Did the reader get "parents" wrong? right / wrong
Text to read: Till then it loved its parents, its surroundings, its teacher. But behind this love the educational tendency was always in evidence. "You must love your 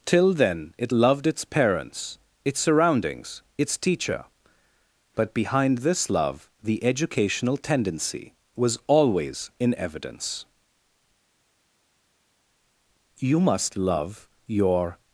right